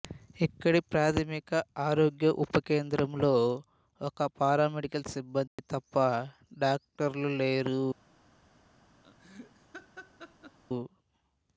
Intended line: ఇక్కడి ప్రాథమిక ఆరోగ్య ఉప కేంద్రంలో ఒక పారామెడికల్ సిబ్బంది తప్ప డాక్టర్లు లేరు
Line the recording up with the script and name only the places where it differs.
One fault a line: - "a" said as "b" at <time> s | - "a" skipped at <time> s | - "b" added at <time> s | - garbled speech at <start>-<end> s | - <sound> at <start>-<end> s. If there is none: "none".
- dropout at 5.5-5.6 s
- laugh at 9.0-10.6 s